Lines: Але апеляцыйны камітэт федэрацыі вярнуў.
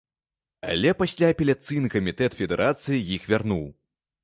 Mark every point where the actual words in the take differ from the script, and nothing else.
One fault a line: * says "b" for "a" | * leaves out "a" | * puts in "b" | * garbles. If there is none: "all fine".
* puts in "пасля"
* puts in "іх"